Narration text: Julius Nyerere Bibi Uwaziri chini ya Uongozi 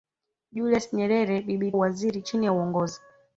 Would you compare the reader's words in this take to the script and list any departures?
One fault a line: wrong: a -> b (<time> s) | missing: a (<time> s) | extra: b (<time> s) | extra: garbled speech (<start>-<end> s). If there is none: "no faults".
no faults